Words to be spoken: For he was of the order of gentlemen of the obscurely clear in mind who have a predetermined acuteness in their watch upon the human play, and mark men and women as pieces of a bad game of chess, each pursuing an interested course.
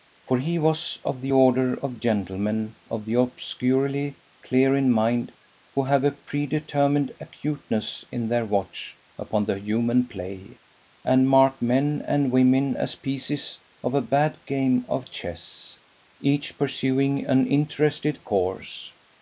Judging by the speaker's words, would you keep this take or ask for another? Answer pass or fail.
pass